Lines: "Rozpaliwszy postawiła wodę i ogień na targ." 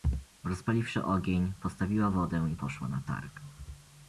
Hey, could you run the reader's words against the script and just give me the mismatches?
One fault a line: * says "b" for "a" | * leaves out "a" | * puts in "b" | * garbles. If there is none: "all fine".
* puts in "ogień"
* says "poszła" for "ogień"